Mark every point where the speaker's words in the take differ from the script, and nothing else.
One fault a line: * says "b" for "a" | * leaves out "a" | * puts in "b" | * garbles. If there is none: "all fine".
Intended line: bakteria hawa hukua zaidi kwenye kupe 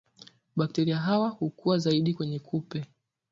all fine